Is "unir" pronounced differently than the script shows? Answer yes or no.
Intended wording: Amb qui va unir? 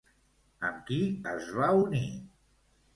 no